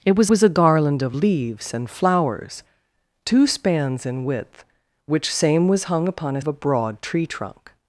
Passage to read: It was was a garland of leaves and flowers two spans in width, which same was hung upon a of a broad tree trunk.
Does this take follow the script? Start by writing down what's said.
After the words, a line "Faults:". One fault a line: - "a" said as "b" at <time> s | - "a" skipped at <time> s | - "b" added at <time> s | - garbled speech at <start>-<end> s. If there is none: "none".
It was was a garland of leaves and flowers two spans in width, which same was hung upon a of a broad tree trunk.
Faults:
none